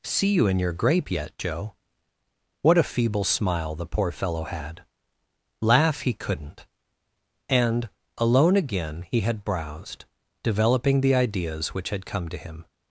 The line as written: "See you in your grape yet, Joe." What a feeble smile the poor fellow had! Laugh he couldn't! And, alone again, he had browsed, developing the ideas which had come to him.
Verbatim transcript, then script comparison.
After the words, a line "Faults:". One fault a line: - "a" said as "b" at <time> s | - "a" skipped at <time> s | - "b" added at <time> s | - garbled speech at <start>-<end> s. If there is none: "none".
"See you in your grape yet, Joe." What a feeble smile the poor fellow had! Laugh he couldn't! And, alone again, he had browsed, developing the ideas which had come to him.
Faults:
none